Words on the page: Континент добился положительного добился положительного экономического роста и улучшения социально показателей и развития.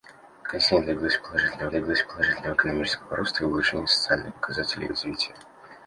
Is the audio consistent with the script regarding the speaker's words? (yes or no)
yes